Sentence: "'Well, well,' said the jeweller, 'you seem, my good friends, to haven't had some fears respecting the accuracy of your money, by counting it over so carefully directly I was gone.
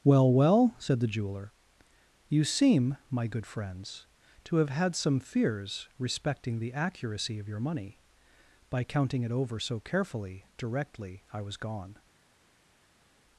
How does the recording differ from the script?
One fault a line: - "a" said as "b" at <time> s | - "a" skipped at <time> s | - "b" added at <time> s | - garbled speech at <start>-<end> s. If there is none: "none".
- "haven't" said as "have" at 4.5 s